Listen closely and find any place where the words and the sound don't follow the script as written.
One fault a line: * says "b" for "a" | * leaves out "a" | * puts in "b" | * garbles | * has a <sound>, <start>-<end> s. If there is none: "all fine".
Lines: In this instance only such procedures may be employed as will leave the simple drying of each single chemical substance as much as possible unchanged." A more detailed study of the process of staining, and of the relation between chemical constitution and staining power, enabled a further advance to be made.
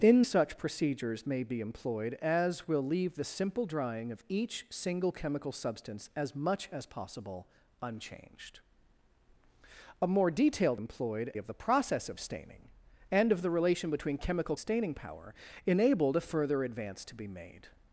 * leaves out "this instance only"
* says "employed" for "study"
* leaves out "constitution and"